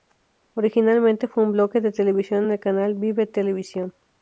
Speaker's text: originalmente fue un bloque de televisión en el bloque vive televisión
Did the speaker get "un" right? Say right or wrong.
right